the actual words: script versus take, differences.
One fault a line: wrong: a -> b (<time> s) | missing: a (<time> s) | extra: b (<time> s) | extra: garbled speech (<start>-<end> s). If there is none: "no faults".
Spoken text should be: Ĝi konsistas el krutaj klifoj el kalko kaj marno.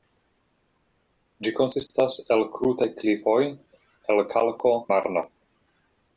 missing: kaj (4.8 s)